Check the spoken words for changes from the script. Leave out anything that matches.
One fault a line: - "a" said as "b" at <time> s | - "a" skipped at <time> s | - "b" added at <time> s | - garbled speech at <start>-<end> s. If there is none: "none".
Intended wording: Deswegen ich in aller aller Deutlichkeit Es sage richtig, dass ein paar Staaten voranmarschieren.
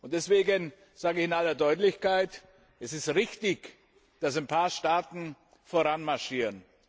- "sage" added at 0.9 s
- "aller" skipped at 1.6 s
- "sage" said as "ist" at 2.9 s